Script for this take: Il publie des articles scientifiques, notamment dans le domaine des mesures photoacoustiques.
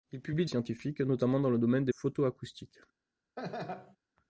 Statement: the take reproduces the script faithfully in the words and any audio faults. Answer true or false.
false